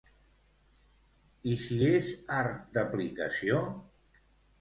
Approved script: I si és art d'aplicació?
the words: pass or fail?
pass